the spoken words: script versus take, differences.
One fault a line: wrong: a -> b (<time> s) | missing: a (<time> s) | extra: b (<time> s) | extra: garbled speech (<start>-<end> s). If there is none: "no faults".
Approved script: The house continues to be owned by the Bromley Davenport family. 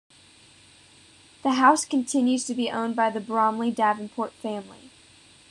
no faults